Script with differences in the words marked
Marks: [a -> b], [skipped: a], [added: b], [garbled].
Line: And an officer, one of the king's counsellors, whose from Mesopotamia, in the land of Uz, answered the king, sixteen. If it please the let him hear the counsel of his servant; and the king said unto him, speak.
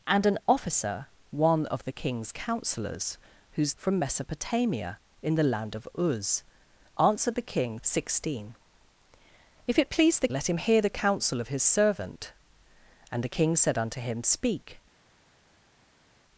And an officer, one of the king's counsellors, whose from Mesopotamia, in the land of Uz, answered the king, sixteen. If it please the let him hear the counsel of his servant; and the king said unto him, speak.